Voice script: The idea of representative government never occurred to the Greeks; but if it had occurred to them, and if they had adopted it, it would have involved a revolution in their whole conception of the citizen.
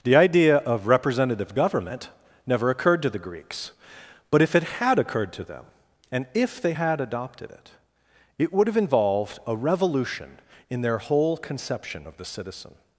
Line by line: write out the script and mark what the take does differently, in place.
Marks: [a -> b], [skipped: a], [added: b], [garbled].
The idea of representative government never occurred to the Greeks; but if it had occurred to them, and if they had adopted it, it would have involved a revolution in their whole conception of the citizen.